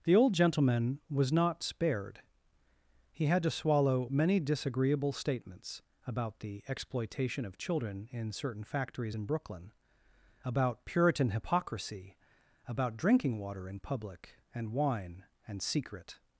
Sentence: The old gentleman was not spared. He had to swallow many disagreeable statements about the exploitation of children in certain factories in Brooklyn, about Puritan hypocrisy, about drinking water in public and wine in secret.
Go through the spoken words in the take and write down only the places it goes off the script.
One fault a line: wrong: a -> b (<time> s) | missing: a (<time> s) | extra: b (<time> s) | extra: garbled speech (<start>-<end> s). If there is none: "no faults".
wrong: in -> and (15.5 s)